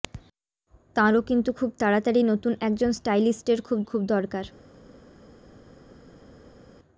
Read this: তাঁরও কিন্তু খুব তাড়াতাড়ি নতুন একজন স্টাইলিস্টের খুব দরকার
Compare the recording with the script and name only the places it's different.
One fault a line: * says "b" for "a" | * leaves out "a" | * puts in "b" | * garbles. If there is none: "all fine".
* puts in "খুব"